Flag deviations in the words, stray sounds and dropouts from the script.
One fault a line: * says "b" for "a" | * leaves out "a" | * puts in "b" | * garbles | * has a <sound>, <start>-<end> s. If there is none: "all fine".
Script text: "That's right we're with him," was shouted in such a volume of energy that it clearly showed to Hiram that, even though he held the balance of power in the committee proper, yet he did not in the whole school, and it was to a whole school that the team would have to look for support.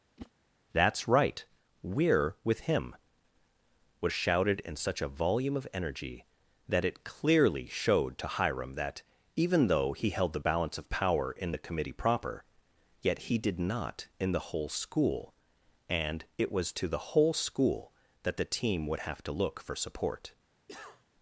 * has a whoosh, 0.2-0.3 s
* says "the" for "a"
* has a cough, 20.7-21.0 s